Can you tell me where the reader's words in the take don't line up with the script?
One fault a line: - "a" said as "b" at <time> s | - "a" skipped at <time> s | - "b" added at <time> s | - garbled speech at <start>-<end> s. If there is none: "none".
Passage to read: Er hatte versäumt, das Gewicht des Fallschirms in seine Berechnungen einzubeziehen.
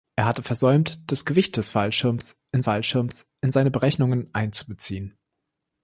- "Fallschirms in" added at 2.6 s